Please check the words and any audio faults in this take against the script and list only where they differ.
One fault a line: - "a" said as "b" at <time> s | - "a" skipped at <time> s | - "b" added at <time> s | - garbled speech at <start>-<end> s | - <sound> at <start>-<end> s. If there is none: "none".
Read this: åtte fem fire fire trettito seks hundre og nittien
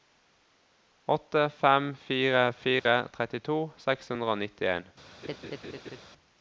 - dropout at 2.8-2.9 s
- laugh at 5.2-6.0 s